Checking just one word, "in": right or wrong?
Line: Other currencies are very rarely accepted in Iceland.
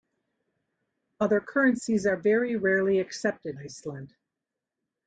wrong